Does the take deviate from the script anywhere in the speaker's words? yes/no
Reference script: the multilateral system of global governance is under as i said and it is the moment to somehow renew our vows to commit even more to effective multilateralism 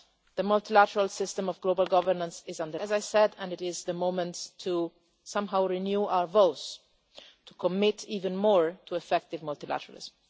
no